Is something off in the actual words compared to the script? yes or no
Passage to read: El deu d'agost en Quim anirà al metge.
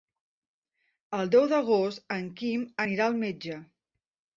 no